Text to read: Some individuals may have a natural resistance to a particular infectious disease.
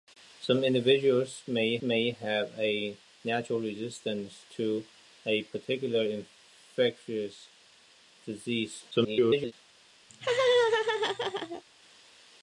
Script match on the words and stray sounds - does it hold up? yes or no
no